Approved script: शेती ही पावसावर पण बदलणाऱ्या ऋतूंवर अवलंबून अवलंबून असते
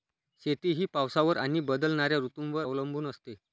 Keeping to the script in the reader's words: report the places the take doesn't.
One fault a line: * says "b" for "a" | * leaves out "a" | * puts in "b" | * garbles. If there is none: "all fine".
* says "आणि" for "पण"
* leaves out "अवलंबून"